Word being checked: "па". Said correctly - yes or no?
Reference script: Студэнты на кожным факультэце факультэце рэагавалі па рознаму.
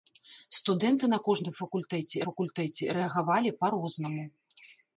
yes